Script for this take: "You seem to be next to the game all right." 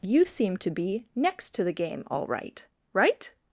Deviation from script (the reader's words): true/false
true